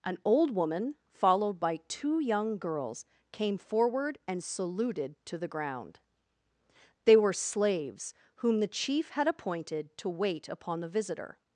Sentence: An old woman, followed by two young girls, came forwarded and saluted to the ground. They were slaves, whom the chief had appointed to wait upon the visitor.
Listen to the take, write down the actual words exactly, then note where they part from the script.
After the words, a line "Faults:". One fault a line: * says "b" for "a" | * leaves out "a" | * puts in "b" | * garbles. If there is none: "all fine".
An old woman, followed by two young girls, came forward and saluted to the ground. They were slaves, whom the chief had appointed to wait upon the visitor.
Faults:
* says "forward" for "forwarded"